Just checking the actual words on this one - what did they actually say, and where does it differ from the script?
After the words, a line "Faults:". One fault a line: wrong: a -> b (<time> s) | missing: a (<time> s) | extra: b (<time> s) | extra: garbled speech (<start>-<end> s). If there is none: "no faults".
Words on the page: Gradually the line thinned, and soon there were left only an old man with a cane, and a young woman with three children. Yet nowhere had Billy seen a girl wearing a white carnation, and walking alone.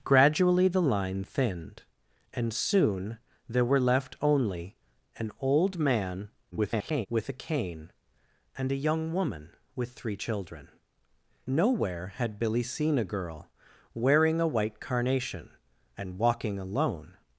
Gradually the line thinned, and soon there were left only an old man [garbled] with a cane, and a young woman with three children. Nowhere had Billy seen a girl wearing a white carnation, and walking alone.
Faults:
extra: garbled speech (6.5-7.1 s)
missing: Yet (10.7 s)